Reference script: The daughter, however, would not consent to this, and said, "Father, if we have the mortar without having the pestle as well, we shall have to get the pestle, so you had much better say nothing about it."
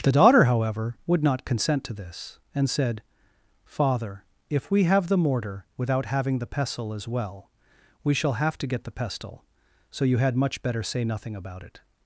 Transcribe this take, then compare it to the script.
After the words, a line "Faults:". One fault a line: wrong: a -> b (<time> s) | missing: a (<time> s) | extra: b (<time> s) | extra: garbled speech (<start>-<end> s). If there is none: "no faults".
The daughter, however, would not consent to this, and said, "Father, if we have the mortar without having the pestle as well, we shall have to get the pestle, so you had much better say nothing about it."
Faults:
no faults